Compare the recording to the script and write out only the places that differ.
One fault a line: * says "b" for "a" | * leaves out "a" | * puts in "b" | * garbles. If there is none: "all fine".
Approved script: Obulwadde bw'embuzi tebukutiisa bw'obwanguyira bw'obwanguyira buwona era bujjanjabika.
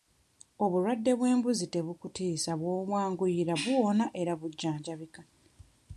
* leaves out "bw'obwanguyira"